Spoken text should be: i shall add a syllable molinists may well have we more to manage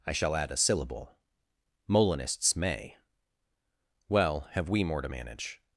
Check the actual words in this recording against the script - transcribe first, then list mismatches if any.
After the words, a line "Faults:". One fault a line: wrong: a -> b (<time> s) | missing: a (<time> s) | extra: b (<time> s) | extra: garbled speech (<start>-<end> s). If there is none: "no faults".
i shall add a syllable molinists may well have we more to manage
Faults:
no faults